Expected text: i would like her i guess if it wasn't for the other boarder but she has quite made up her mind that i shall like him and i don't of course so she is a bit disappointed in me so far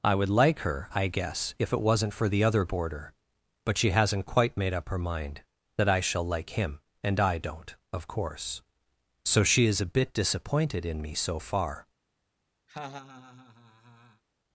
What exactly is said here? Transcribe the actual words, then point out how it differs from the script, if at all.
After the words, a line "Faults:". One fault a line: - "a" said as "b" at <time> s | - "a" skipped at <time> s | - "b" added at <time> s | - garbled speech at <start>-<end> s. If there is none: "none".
i would like her i guess if it wasn't for the other boarder but she hasn't quite made up her mind that i shall like him and i don't of course so she is a bit disappointed in me so far
Faults:
- "has" said as "hasn't" at 3.9 s